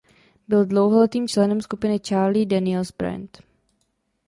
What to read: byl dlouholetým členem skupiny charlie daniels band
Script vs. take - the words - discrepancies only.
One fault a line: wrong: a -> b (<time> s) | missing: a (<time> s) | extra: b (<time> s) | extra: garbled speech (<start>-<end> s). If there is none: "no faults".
no faults